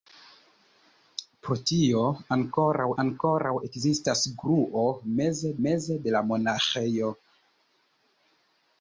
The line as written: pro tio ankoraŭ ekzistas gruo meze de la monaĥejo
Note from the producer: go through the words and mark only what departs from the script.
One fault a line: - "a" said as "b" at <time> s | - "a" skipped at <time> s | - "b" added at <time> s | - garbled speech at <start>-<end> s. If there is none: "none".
- "ankoraŭ" added at 3.0 s
- "meze" added at 5.7 s